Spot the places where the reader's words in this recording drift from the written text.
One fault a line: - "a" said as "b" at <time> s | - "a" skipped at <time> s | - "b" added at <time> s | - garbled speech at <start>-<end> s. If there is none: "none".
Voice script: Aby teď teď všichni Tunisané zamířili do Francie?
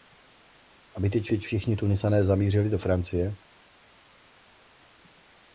none